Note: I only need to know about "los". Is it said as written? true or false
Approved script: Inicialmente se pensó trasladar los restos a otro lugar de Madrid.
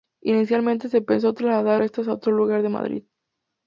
false